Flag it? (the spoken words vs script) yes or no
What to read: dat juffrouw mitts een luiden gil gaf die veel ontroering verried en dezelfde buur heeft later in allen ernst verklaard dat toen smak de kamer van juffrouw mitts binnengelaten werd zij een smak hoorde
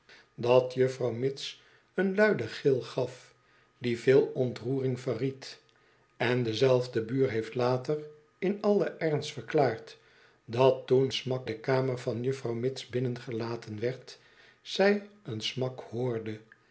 no